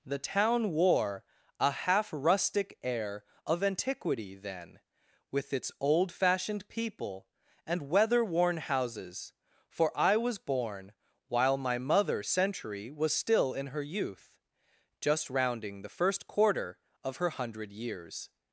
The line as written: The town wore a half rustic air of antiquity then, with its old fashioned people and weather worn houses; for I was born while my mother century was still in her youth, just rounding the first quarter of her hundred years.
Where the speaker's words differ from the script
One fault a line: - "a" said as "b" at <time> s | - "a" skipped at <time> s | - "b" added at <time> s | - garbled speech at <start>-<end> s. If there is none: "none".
none